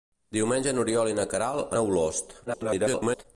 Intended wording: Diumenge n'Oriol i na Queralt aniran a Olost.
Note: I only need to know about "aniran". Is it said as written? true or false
false